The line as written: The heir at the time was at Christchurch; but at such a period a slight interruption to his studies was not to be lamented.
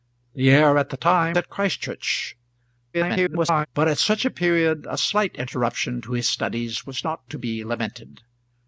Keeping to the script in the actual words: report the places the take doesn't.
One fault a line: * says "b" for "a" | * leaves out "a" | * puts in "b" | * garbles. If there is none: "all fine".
* leaves out "was"
* garbles